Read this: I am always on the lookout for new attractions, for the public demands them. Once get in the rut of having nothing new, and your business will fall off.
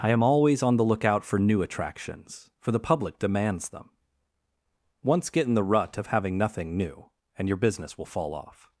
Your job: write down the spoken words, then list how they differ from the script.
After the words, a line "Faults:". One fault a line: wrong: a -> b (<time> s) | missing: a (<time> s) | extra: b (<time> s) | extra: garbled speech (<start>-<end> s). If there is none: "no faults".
I am always on the lookout for new attractions, for the public demands them. Once get in the rut of having nothing new, and your business will fall off.
Faults:
no faults